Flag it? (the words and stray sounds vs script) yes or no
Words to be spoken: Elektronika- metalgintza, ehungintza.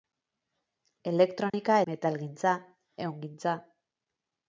yes